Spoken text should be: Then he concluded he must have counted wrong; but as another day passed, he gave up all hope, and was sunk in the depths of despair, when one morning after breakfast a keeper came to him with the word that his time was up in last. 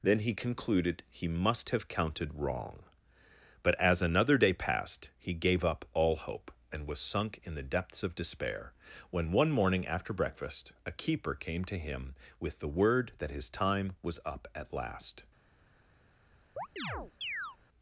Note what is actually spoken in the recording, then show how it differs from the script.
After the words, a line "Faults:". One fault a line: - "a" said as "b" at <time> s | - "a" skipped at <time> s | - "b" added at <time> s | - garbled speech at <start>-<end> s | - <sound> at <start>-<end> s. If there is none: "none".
Then he concluded he must have counted wrong; but as another day passed, he gave up all hope, and was sunk in the depths of despair, when one morning after breakfast a keeper came to him with the word that his time was up at last.
Faults:
- "in" said as "at" at 14.6 s
- chirp at 16.6-17.6 s